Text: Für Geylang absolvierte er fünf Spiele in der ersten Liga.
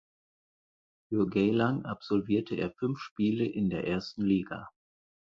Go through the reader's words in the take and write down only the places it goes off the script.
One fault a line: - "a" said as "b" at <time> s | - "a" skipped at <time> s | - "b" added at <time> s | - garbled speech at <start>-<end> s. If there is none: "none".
none